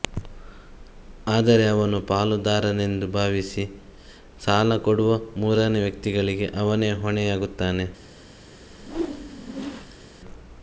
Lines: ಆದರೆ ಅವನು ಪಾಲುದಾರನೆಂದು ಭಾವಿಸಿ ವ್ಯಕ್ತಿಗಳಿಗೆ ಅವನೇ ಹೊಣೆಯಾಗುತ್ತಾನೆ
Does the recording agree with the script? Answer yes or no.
no